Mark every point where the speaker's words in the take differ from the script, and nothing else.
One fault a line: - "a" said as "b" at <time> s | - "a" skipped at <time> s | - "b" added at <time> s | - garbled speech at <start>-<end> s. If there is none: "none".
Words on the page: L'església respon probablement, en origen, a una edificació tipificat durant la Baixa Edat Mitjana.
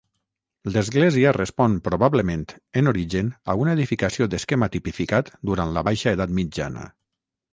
- "d'esquema" added at 4.3 s